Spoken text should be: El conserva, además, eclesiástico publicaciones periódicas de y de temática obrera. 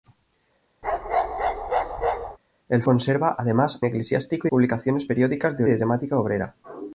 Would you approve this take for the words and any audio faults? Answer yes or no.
no